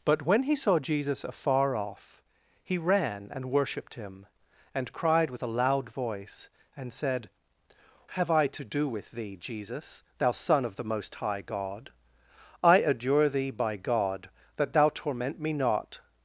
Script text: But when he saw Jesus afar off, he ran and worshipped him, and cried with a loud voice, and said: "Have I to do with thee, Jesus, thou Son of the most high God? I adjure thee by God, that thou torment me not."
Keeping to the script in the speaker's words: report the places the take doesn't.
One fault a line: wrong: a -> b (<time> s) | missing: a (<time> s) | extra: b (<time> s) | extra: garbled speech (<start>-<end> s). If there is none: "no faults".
no faults